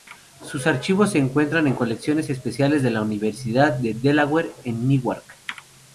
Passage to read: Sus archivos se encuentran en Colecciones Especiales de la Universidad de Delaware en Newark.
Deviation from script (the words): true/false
false